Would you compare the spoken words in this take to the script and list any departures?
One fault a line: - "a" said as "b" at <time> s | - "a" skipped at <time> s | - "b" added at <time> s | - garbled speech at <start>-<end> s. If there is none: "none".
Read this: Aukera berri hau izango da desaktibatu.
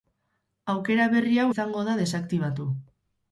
none